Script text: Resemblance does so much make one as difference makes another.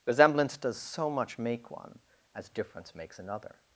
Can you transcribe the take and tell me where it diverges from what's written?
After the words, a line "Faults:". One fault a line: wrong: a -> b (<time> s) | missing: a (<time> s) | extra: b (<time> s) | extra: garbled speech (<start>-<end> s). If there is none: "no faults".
Resemblance does so much make one as difference makes another.
Faults:
no faults